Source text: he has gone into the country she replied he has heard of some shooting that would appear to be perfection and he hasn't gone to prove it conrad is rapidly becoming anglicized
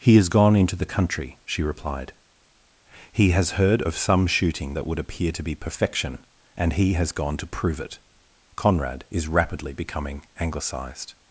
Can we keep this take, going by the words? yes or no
no